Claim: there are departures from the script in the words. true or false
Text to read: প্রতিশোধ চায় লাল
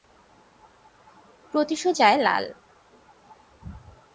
false